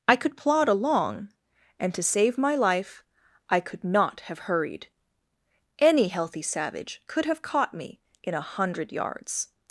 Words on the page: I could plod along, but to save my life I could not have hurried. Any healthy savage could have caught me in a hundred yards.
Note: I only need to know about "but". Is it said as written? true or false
false